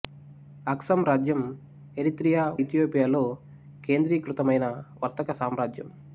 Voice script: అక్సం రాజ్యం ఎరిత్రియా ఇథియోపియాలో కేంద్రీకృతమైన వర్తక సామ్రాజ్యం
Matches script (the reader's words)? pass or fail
pass